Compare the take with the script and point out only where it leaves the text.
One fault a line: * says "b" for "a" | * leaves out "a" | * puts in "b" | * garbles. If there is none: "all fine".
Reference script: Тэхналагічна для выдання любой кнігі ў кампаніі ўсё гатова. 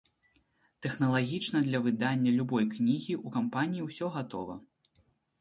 all fine